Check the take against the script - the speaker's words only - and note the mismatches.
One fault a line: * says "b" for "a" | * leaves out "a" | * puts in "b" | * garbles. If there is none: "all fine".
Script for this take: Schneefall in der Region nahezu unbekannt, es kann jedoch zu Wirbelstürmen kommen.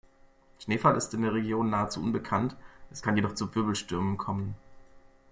* puts in "ist"